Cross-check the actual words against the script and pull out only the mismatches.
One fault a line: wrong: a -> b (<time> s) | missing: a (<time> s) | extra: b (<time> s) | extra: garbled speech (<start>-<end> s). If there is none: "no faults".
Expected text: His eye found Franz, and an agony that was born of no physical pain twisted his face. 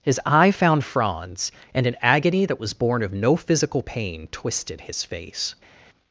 no faults